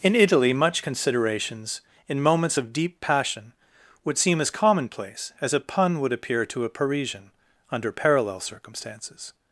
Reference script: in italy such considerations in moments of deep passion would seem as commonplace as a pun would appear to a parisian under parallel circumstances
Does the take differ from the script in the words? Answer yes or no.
yes